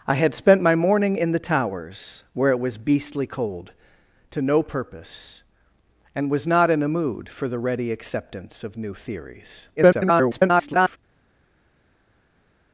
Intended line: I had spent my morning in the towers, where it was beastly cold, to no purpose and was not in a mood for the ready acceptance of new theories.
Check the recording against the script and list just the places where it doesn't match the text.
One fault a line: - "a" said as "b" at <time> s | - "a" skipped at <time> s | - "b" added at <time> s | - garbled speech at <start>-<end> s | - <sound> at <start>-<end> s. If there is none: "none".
- garbled speech at 9.8-11.0 s